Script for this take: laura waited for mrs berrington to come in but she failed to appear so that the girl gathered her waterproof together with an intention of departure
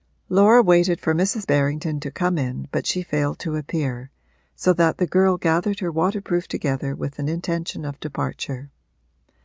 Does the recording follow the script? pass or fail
pass